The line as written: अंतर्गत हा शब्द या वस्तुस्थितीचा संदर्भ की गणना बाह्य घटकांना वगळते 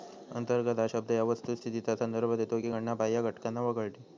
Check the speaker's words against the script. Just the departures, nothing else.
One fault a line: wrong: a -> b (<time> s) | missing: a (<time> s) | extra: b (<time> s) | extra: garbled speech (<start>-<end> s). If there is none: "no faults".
extra: देतो (2.4 s)